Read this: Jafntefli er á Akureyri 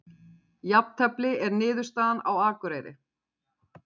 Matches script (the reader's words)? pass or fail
fail